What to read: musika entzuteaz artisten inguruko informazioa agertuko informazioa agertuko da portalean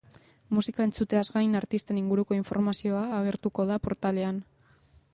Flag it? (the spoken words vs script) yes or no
yes